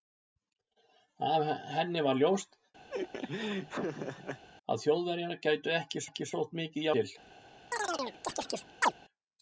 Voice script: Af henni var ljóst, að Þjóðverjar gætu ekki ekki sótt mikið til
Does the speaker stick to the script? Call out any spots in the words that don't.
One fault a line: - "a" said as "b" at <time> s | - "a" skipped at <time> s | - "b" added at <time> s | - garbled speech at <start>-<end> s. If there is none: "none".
none